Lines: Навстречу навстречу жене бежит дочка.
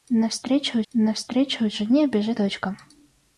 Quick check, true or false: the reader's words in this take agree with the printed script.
true